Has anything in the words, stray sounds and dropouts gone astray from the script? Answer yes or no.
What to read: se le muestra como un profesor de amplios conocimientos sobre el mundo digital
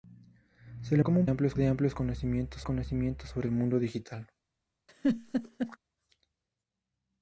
yes